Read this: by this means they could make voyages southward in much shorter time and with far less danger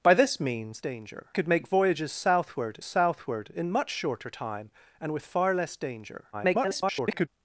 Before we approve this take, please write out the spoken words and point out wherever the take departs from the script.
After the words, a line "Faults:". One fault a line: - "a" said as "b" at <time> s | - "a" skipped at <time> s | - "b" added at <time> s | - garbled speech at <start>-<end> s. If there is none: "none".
by this means danger could make voyages southward southward in much shorter time and with far less danger [garbled]
Faults:
- "they" said as "danger" at 0.8 s
- "southward" added at 2.8 s
- garbled speech at 6.3-7.3 s